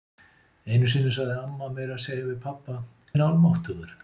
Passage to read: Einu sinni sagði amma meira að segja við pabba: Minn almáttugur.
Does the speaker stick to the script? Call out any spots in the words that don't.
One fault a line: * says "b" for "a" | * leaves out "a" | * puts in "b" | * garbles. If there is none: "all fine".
all fine